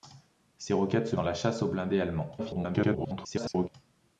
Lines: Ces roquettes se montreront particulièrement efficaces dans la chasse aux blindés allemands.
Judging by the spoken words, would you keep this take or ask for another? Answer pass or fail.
fail